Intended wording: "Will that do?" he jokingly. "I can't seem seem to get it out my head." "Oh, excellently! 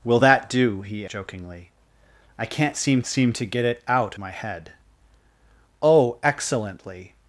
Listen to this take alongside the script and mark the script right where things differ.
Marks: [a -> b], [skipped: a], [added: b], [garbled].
"Will that do?" he jokingly. "I can't seem seem to get it out my head." "Oh, excellently!